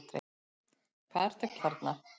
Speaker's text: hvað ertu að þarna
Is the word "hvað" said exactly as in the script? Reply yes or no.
yes